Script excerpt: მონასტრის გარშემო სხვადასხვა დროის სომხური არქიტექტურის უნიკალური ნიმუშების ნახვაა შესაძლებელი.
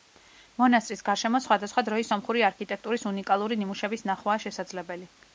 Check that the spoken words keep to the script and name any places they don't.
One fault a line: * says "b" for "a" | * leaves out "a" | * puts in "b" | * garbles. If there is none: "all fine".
all fine